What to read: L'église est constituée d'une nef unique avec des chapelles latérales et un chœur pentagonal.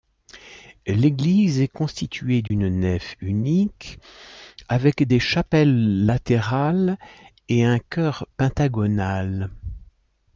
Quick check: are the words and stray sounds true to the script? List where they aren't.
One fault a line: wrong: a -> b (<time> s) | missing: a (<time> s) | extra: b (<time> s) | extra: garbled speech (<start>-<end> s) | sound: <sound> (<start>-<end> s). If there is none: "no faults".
sound: dropout (2.5-2.5 s)